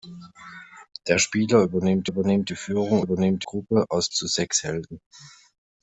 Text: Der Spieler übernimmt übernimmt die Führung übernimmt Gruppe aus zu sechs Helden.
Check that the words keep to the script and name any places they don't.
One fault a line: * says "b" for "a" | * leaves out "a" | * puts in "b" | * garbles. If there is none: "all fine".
all fine